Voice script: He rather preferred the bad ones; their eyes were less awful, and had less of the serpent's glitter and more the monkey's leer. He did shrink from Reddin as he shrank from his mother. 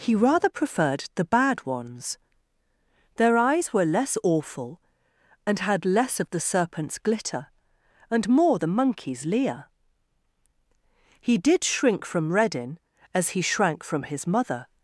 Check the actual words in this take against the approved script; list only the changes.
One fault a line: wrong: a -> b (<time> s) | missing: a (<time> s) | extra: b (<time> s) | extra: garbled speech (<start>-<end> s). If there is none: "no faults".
no faults